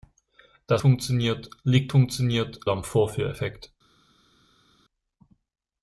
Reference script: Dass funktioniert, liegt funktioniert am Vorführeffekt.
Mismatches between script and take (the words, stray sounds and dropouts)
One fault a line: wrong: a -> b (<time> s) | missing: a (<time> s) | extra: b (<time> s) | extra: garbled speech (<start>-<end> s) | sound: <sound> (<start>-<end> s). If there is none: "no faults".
no faults